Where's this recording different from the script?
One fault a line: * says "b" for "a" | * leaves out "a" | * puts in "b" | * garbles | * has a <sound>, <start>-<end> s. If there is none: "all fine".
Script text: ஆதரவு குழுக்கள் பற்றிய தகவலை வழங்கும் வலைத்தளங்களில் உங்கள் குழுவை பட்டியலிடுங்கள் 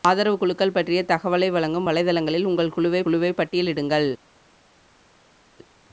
* puts in "குழுவை"